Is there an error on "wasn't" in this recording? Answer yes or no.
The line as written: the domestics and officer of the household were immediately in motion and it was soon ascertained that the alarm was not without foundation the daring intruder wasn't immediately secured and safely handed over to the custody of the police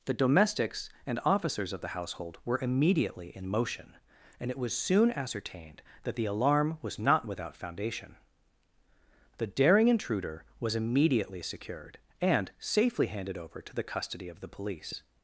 yes